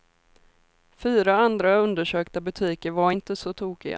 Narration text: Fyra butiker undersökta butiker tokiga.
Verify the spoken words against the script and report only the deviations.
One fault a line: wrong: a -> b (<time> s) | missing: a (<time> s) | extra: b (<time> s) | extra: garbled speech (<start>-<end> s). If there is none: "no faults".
wrong: butiker -> andra (1.4 s)
extra: var inte så (2.9 s)